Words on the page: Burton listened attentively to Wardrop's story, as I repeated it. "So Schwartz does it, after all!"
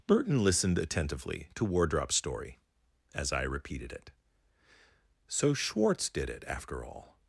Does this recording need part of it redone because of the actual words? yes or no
yes